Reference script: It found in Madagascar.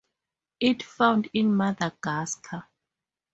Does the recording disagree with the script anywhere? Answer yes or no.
no